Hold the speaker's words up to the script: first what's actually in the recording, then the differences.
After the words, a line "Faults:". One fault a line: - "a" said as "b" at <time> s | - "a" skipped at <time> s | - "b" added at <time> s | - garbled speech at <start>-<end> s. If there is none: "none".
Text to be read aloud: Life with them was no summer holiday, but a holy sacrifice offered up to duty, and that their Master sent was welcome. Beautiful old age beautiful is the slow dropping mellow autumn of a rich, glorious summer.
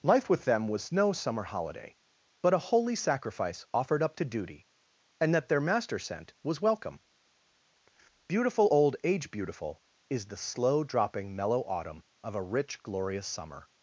Life with them was no summer holiday, but a holy sacrifice offered up to duty, and that their Master sent was welcome. Beautiful old age beautiful is the slow dropping mellow autumn of a rich, glorious summer.
Faults:
none